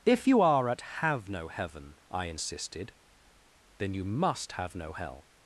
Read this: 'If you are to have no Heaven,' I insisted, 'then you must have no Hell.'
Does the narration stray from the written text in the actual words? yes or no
yes